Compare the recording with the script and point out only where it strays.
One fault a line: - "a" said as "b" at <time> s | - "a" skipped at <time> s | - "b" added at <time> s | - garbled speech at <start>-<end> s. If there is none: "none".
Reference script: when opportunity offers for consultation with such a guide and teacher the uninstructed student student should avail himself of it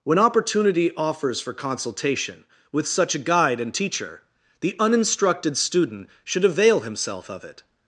- "student" skipped at 6.1 s